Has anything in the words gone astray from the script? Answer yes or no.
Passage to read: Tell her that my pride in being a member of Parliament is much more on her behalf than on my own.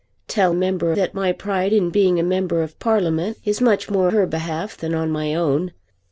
yes